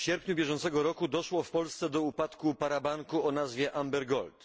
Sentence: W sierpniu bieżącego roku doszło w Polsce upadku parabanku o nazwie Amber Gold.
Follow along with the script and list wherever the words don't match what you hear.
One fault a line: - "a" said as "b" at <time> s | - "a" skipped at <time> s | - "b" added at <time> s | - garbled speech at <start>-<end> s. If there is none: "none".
- "do" added at 1.9 s